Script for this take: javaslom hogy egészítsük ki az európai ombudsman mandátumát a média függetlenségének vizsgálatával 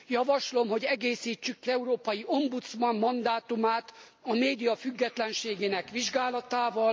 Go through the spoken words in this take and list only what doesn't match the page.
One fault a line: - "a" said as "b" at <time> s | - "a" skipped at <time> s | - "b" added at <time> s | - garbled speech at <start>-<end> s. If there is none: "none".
- "az" skipped at 1.7 s